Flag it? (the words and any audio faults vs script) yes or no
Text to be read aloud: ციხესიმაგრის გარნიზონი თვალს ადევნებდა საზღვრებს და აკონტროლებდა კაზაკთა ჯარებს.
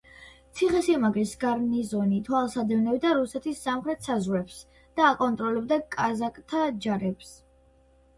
yes